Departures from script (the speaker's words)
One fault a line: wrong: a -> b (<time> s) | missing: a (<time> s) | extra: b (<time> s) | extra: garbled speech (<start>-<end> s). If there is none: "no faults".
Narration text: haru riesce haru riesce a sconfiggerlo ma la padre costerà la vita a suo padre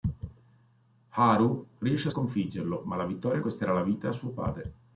missing: haru riesce (2.1 s)
wrong: padre -> vittoria (3.1 s)